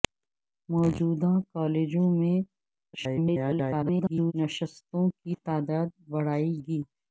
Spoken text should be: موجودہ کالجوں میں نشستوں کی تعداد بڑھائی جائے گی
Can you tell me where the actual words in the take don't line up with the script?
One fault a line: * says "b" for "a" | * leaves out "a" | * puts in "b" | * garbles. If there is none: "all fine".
* garbles
* leaves out "جائے"